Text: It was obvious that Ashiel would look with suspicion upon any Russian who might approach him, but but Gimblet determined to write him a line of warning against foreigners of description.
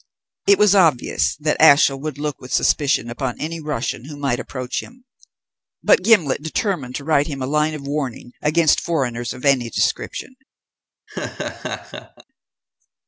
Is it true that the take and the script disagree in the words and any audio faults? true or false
true